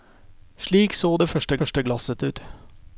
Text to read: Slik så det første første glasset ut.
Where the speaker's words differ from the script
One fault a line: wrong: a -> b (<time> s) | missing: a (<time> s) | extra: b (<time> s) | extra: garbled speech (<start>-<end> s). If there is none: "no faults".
no faults